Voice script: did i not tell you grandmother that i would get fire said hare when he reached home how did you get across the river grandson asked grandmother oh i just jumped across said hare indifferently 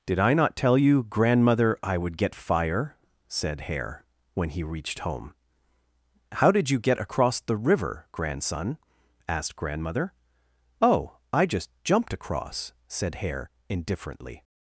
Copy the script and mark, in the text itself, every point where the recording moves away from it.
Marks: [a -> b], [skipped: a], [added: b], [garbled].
did i not tell you grandmother [skipped: that] i would get fire said hare when he reached home how did you get across the river grandson asked grandmother oh i just jumped across said hare indifferently